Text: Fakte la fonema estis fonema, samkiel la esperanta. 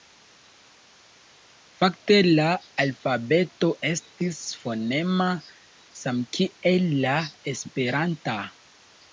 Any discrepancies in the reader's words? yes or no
yes